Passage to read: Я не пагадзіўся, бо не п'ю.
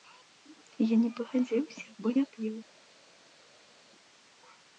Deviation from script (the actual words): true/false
false